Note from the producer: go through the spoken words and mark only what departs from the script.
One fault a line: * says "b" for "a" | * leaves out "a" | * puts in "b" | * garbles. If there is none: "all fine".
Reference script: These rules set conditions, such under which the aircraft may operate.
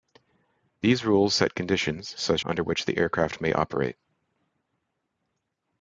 all fine